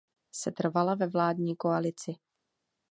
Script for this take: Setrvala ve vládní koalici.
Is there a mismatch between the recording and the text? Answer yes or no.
no